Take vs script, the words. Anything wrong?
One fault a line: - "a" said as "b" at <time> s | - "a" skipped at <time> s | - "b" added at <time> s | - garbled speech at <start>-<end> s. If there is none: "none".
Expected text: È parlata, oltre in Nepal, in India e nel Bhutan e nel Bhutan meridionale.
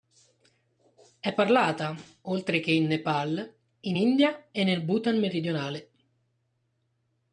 - "che" added at 2.6 s
- "e nel Bhutan" skipped at 5.2 s